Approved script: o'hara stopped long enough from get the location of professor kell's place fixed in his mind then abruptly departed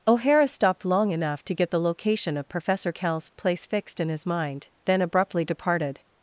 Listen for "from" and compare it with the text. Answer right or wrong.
wrong